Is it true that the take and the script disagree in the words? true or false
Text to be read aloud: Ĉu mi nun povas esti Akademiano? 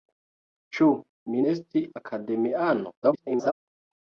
true